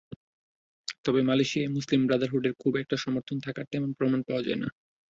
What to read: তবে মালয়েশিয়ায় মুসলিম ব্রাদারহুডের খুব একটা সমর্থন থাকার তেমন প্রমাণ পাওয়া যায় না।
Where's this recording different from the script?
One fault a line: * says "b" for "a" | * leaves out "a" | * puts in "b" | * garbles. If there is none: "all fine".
all fine